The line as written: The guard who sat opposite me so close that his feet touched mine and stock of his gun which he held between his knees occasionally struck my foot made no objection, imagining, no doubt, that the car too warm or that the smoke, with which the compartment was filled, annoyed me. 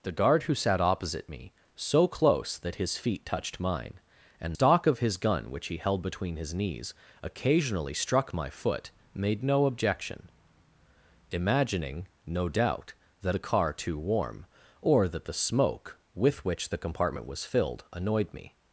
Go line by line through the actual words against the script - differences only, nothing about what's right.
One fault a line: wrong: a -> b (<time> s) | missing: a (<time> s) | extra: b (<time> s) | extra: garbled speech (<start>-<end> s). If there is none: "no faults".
no faults